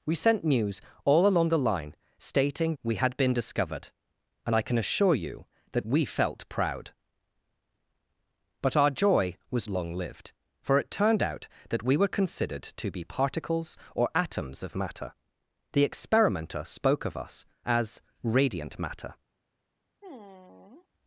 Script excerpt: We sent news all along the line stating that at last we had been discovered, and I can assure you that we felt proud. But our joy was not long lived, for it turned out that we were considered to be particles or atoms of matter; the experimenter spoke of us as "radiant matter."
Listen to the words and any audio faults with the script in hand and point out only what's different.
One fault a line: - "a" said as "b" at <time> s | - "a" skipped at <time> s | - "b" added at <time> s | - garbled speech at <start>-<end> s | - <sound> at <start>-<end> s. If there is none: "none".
- "that at last" skipped at 2.8 s
- "not" skipped at 9.7 s
- sigh at 20.0-20.9 s